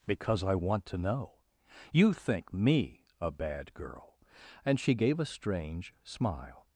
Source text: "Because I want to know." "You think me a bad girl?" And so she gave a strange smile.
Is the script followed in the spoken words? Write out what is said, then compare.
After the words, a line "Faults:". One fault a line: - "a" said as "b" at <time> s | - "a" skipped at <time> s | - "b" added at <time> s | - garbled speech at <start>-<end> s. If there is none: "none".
"Because I want to know." "You think me a bad girl?" And she gave a strange smile.
Faults:
- "so" skipped at 4.8 s